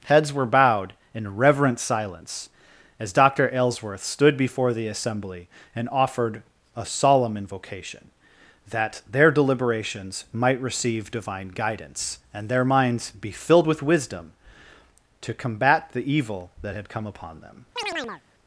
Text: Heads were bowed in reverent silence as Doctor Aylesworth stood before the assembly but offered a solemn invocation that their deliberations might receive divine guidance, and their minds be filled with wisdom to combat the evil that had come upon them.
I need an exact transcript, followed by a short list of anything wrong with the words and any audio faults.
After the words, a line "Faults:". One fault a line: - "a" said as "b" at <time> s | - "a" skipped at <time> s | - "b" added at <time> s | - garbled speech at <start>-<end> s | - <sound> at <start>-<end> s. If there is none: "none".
Heads were bowed in reverent silence as Doctor Aylesworth stood before the assembly and offered a solemn invocation that their deliberations might receive divine guidance, and their minds be filled with wisdom to combat the evil that had come upon them.
Faults:
- "but" said as "and" at 5.8 s
- chirp at 17.8-18.2 s